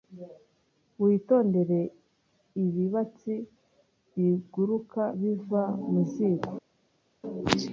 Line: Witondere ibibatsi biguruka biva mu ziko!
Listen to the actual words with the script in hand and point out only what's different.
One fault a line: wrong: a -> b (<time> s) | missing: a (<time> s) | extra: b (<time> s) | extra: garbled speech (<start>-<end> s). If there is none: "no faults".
no faults